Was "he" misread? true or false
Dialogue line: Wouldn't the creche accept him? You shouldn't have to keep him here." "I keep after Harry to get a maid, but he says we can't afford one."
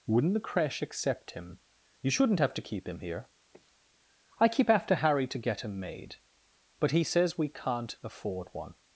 false